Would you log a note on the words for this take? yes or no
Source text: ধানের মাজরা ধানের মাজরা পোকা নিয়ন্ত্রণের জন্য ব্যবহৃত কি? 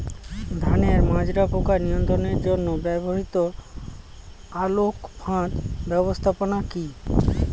yes